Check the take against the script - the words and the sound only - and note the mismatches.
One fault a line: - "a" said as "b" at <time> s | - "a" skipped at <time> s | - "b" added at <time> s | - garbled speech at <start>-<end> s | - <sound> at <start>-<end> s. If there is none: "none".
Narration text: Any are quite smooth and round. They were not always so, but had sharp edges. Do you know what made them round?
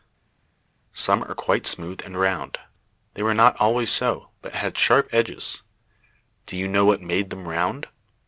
- "Any" said as "Some" at 0.9 s